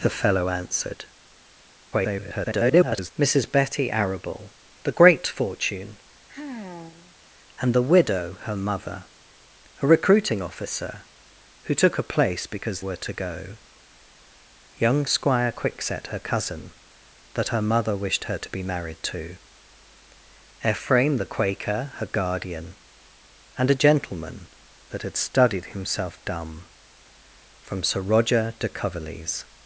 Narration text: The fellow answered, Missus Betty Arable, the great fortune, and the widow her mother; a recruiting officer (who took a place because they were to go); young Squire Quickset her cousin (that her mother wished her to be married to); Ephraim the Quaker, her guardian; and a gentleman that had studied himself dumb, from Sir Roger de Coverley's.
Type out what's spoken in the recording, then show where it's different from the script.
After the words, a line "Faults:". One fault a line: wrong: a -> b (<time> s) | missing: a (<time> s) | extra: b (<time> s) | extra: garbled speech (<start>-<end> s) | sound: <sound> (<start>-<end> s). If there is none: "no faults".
The fellow answered, [garbled] Missus Betty Arable, the great fortune, and the widow her mother; a recruiting officer (who took a place because were to go); young Squire Quickset her cousin (that her mother wished her to be married to); Ephraim the Quaker, her guardian; and a gentleman that had studied himself dumb, from Sir Roger de Coverley's.
Faults:
extra: garbled speech (1.9-3.1 s)
sound: sigh (6.3-7.2 s)
missing: they (12.8 s)